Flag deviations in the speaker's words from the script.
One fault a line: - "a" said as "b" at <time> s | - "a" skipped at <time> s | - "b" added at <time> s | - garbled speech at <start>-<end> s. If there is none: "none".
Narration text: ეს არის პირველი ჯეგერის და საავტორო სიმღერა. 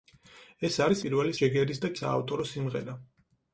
none